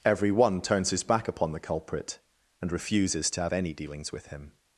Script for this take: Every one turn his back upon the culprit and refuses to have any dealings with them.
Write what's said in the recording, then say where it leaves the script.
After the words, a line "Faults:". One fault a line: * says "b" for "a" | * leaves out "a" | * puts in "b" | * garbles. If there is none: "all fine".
Every one turns his back upon the culprit and refuses to have any dealings with him.
Faults:
* says "turns" for "turn"
* says "him" for "them"